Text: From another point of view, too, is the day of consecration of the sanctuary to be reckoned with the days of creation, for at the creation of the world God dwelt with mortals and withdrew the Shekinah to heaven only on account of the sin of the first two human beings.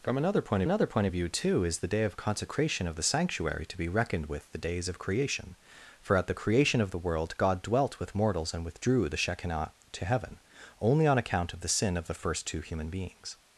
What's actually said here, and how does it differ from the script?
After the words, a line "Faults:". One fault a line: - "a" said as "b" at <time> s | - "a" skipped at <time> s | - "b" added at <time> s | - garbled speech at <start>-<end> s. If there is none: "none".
From another point another point of view, too, is the day of consecration of the sanctuary to be reckoned with the days of creation, for at the creation of the world God dwelt with mortals and withdrew the Shekinah to heaven only on account of the sin of the first two human beings.
Faults:
- "another point" added at 0.6 s